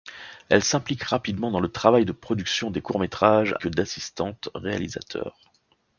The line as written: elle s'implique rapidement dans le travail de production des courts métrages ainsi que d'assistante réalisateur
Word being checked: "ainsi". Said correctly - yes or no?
no